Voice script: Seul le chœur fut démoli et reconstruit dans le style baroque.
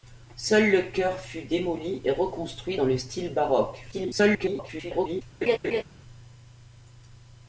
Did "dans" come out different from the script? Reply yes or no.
no